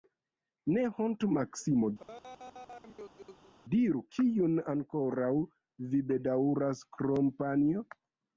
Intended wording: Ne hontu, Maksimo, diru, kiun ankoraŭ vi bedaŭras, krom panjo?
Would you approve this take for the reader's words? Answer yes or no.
yes